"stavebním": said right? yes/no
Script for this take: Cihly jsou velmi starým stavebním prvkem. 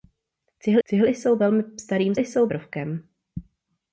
no